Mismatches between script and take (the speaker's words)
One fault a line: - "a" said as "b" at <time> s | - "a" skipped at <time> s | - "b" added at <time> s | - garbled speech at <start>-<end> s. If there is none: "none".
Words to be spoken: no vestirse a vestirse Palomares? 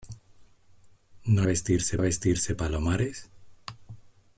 none